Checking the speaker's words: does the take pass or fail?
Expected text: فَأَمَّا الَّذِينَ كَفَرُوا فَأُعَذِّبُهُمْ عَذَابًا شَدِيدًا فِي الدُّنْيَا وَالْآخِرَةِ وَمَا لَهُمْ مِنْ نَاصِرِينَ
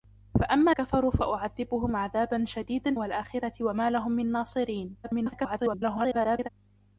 fail